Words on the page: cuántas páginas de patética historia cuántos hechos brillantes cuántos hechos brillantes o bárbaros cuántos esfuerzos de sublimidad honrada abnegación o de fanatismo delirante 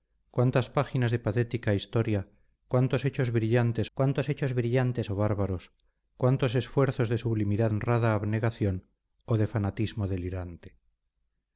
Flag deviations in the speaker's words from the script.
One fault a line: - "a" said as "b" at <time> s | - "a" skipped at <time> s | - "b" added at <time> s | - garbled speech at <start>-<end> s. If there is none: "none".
none